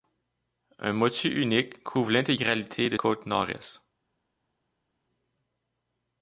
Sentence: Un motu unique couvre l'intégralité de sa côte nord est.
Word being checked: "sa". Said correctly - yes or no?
no